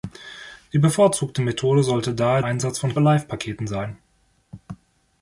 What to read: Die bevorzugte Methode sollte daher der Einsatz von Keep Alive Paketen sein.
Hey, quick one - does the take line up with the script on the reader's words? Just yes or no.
no